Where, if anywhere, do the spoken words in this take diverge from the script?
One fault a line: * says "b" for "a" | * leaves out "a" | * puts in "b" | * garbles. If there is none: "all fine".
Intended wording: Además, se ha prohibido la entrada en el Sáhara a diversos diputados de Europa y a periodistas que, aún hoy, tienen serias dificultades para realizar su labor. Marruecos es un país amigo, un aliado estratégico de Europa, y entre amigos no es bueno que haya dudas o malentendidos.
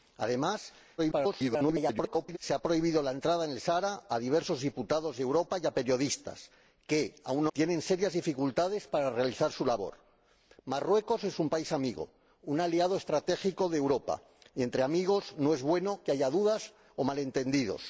* garbles
* leaves out "hoy"